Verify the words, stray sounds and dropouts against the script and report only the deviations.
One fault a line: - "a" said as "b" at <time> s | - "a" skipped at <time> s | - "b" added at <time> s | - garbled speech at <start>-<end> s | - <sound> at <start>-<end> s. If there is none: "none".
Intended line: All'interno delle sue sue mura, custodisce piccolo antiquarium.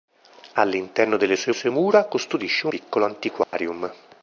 - dropout at 3.4-3.5 s